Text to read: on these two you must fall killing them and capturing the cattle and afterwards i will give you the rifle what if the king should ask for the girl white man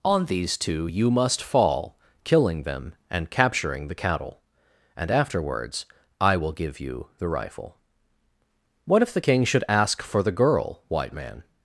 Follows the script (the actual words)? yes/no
yes